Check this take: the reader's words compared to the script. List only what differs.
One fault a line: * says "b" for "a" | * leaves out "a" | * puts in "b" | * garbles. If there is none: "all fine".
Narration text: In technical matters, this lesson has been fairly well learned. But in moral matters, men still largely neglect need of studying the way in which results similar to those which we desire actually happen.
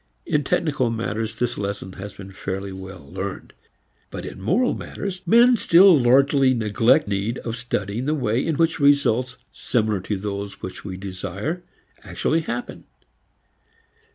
all fine